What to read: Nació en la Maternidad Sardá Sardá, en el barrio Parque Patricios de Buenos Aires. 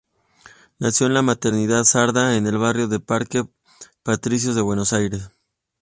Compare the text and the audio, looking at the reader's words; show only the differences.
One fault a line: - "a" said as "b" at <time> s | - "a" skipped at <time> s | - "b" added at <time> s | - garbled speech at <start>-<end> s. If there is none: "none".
- "Sardá" skipped at 2.4 s
- "de" added at 2.9 s